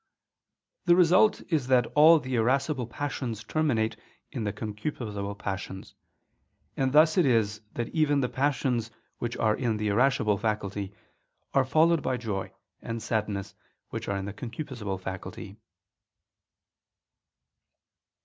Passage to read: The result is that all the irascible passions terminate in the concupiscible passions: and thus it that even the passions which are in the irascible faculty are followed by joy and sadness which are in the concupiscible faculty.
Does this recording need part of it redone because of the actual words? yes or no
yes